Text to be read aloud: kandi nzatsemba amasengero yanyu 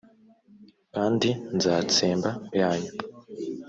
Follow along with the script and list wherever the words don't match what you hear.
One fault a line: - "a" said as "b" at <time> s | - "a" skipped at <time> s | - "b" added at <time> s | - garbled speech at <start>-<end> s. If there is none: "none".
- "amasengero" skipped at 2.3 s